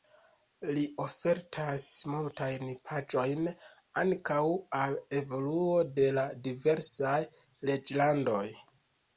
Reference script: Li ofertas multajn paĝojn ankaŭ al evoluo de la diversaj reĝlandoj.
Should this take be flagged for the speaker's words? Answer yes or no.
no